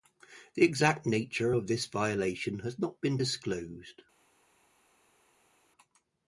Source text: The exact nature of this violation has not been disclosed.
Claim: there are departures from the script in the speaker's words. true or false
false